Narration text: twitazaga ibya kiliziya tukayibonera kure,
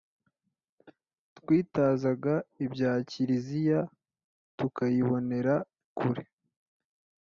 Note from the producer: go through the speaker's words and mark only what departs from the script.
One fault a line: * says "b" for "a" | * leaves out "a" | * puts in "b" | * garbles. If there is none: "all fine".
all fine